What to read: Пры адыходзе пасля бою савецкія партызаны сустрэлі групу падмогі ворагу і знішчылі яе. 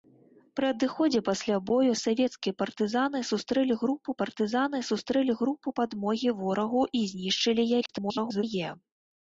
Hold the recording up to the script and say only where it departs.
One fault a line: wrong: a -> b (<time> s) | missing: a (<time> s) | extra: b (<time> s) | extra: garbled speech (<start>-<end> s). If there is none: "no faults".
extra: партызаны сустрэлі групу (4.2 s)
extra: garbled speech (7.8-8.4 s)